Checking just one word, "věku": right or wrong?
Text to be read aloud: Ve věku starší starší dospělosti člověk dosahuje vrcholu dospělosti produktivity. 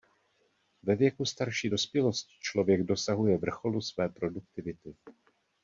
right